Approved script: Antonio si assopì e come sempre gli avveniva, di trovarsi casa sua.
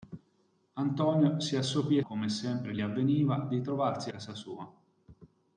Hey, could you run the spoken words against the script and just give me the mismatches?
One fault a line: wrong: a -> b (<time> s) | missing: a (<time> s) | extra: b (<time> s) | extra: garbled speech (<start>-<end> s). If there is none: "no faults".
no faults